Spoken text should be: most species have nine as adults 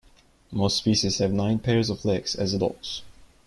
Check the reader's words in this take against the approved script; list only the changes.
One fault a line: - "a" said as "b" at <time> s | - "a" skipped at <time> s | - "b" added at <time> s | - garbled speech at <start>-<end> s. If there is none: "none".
- "pairs of legs" added at 1.6 s